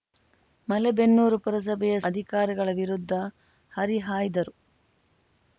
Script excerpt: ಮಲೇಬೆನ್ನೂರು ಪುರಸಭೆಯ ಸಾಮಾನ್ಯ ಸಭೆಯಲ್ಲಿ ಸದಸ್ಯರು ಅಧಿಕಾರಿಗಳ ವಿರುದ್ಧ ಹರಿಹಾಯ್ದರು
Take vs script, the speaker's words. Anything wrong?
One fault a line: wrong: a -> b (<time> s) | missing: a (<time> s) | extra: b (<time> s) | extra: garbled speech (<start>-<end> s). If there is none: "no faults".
missing: ಸಾಮಾನ್ಯ ಸಭೆಯಲ್ಲಿ ಸದಸ್ಯರು (1.9 s)